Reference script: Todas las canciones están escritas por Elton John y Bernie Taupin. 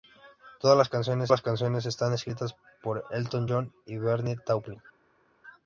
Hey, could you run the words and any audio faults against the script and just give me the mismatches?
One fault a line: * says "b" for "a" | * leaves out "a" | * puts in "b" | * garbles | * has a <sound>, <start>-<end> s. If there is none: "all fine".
* puts in "las canciones"